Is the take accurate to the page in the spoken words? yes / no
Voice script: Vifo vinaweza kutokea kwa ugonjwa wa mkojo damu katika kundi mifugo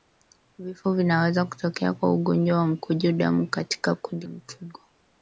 yes